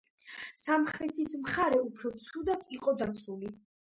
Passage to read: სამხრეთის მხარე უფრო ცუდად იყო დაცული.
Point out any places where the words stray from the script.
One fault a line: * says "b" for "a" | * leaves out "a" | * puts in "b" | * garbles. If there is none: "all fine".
all fine